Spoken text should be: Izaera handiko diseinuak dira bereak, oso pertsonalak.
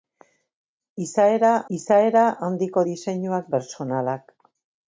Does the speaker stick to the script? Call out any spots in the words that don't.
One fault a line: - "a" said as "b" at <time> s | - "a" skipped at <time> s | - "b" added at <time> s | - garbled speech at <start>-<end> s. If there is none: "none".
- "izaera" added at 1.8 s
- "dira bereak oso" skipped at 3.5 s